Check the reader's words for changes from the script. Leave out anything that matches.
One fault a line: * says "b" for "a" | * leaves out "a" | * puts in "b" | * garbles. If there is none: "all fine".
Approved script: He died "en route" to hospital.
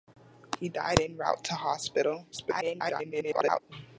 * garbles